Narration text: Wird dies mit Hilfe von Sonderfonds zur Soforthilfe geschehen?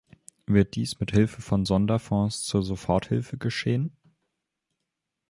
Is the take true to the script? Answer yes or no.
yes